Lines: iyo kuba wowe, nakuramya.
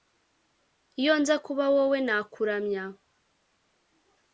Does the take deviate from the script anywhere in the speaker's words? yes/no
yes